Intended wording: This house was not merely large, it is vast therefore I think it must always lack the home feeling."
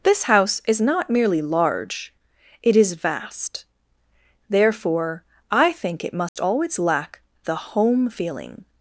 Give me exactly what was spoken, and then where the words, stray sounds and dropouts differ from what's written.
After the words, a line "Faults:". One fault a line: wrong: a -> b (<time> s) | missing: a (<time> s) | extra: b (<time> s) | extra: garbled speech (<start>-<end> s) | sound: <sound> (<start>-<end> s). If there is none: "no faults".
This house is not merely large, it is vast therefore I think it must always lack the home feeling."
Faults:
wrong: was -> is (0.7 s)
sound: dropout (6.3-6.4 s)